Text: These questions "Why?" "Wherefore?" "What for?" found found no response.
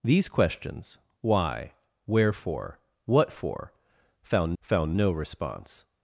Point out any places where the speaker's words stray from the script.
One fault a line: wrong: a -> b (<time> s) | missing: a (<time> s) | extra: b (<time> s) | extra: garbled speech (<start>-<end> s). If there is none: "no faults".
no faults